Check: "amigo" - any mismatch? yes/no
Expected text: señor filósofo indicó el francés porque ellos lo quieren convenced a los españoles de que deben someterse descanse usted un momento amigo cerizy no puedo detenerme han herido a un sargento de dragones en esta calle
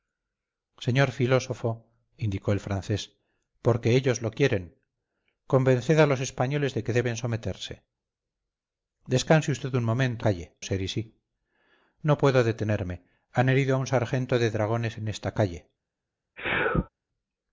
yes